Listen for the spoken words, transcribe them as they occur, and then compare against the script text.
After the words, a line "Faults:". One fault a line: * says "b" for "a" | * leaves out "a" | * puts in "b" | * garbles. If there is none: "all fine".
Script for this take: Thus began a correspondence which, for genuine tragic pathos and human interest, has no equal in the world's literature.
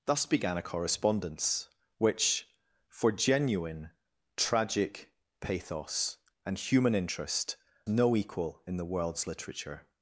Thus began a correspondence which, for genuine tragic pathos and human interest, no equal in the world's literature.
Faults:
* leaves out "has"